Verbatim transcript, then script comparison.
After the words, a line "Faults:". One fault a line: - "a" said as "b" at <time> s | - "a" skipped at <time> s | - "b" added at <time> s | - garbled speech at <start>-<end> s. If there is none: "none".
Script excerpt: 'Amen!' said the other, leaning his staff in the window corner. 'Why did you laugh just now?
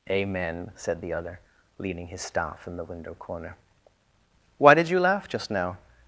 'Amen!' said the other, leaning his staff in the window corner. 'Why did you laugh just now?
Faults:
none